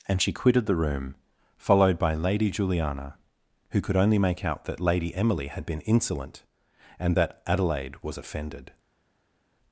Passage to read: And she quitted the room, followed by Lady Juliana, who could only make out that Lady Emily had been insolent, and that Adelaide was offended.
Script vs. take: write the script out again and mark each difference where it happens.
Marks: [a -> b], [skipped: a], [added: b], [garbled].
And she quitted the room, followed by Lady Juliana, who could only make out that Lady Emily had been insolent, and that Adelaide was offended.